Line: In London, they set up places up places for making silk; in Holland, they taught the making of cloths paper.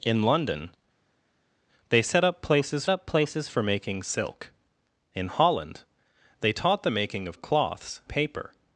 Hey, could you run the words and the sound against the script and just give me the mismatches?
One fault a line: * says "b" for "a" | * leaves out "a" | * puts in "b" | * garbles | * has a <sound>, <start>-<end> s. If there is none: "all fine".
all fine